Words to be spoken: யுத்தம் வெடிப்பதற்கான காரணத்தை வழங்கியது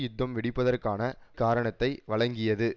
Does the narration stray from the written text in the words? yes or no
no